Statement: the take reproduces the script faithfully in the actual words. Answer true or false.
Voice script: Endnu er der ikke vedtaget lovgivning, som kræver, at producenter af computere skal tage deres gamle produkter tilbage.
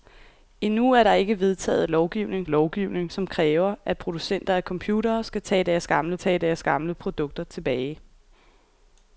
false